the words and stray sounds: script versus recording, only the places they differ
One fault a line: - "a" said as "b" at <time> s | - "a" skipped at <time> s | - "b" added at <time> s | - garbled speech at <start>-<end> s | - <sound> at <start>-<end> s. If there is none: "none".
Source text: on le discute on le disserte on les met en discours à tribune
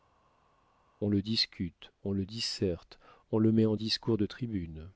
- "les" said as "le" at 3.4 s
- "à" said as "de" at 4.2 s